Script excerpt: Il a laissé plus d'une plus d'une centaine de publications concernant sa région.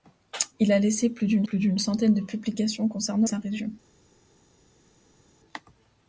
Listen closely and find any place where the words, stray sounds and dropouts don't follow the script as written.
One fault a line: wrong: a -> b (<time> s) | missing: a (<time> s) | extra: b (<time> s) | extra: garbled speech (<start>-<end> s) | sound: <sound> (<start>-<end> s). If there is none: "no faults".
no faults